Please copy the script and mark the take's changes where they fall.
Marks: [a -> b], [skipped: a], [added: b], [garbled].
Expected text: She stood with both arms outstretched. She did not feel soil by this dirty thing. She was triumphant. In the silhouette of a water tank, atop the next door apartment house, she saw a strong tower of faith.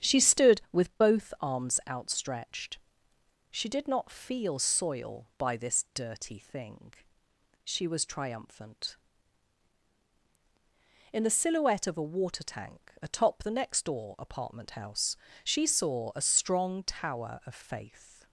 She stood with both arms outstretched. She did not feel soil by this dirty thing. She was triumphant. In the silhouette of a water tank, atop the next door apartment house, she saw a strong tower of faith.